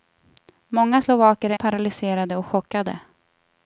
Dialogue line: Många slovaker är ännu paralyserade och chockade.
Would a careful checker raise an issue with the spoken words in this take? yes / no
yes